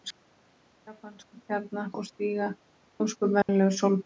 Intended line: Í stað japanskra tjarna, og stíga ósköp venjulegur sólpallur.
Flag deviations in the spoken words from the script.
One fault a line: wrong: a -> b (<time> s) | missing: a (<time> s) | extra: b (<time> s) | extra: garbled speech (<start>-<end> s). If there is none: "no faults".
no faults